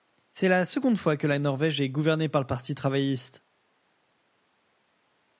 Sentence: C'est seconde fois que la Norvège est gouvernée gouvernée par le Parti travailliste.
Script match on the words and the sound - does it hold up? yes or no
no